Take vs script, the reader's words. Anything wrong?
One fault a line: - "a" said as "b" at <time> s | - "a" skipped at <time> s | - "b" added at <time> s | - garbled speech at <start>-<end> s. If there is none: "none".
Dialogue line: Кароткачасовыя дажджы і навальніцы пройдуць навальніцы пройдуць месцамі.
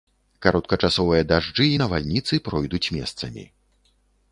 - "навальніцы пройдуць" skipped at 2.9 s